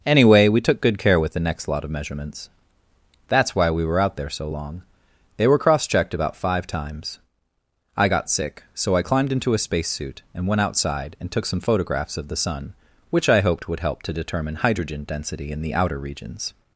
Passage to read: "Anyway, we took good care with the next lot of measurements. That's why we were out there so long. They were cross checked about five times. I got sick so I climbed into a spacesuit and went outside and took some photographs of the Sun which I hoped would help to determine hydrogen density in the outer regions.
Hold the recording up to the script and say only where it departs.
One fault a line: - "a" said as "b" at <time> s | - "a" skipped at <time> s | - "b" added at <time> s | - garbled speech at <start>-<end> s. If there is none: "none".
none